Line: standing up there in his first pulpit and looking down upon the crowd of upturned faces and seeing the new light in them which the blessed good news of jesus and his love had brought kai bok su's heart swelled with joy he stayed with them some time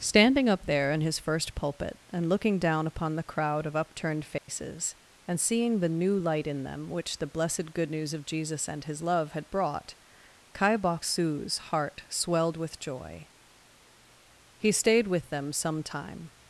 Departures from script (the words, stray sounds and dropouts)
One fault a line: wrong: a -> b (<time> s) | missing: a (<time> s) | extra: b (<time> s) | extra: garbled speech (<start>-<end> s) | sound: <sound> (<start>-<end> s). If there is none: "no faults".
sound: dropout (4.4-4.5 s)